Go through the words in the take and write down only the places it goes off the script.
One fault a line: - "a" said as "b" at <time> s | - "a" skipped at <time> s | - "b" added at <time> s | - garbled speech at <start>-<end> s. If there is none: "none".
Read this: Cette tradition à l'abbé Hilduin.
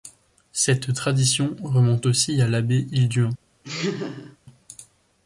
- "remonte aussi" added at 1.6 s